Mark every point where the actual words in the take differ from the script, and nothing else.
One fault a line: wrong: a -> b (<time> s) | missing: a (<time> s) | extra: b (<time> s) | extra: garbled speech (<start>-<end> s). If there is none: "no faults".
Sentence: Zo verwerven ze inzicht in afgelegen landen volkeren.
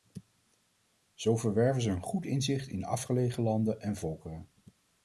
extra: een goed (1.9 s)
extra: en (3.8 s)